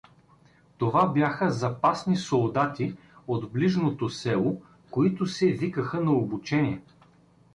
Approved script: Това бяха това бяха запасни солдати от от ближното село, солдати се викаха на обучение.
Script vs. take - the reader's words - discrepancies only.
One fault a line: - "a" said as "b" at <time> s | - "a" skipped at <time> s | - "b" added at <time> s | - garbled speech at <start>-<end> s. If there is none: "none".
- "това бяха" skipped at 1.5 s
- "от" skipped at 3.5 s
- "солдати" said as "които" at 4.9 s